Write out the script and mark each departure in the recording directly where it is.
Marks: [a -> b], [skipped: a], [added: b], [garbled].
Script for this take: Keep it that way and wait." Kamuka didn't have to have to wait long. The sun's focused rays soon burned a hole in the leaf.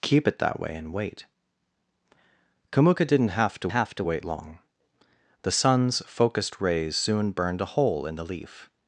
Keep it that way and wait." Kamuka didn't have to have to wait long. The sun's focused rays soon burned a hole in the leaf.